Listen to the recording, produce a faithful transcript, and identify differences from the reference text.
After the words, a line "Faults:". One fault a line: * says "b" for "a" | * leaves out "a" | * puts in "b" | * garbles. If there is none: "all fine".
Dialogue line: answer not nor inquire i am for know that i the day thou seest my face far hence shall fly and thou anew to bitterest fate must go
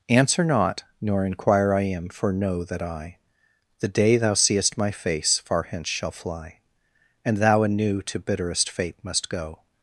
answer not nor inquire i am for know that i the day thou seest my face far hence shall fly and thou anew to bitterest fate must go
Faults:
all fine